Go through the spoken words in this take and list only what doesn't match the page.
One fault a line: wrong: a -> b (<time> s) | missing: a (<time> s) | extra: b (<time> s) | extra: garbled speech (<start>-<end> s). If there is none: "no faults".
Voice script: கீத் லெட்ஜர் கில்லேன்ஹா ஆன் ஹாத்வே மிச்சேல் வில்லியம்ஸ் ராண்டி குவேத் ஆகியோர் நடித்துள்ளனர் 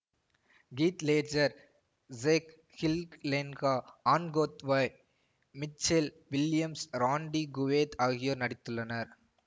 extra: ஜேக் (2.1 s)